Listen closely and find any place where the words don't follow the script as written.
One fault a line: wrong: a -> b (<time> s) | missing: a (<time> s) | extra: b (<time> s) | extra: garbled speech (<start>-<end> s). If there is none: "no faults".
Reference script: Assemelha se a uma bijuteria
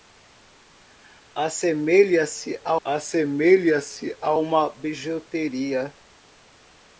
extra: assemelha se a (2.8 s)